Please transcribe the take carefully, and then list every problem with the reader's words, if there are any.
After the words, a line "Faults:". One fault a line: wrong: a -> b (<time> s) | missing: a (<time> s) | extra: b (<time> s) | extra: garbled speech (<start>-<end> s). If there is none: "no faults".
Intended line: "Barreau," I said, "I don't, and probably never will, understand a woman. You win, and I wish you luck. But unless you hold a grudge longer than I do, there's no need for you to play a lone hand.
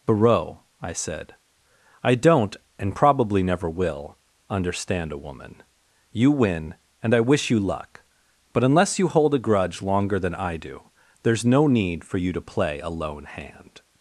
"Barreau," I said, "I don't, and probably never will, understand a woman. You win, and I wish you luck. But unless you hold a grudge longer than I do, there's no need for you to play a lone hand.
Faults:
no faults